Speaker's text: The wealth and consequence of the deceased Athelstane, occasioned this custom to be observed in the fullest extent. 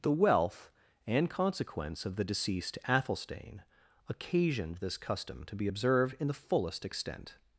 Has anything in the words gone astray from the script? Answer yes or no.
no